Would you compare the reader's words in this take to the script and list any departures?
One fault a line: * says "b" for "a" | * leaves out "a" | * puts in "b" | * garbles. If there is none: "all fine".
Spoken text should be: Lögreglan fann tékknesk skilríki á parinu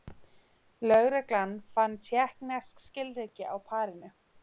all fine